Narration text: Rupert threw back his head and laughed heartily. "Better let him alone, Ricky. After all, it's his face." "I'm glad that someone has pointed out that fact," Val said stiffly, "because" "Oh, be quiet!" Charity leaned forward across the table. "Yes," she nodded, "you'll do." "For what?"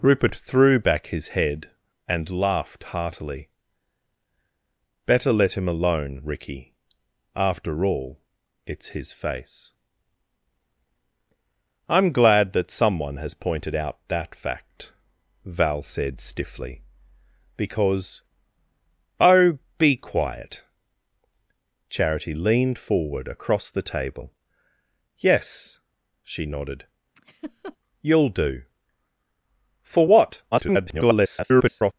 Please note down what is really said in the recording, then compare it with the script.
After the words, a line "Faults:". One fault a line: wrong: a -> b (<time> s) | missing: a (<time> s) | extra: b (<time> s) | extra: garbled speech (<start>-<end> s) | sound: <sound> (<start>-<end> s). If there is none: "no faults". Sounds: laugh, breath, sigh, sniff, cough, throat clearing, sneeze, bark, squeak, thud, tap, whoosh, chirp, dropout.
Rupert threw back his head and laughed heartily. "Better let him alone, Ricky. After all, it's his face." "I'm glad that someone has pointed out that fact," Val said stiffly, "because" "Oh, be quiet!" Charity leaned forward across the table. "Yes," she nodded, "you'll do." "For what?" [garbled]
Faults:
sound: laugh (27.2-27.8 s)
extra: garbled speech (30.5-31.9 s)